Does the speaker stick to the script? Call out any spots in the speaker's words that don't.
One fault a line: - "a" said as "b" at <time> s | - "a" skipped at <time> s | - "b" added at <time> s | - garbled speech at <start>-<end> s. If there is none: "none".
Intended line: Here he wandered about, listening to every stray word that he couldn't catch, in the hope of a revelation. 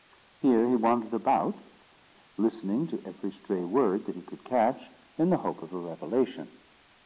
- "couldn't" said as "could" at 4.2 s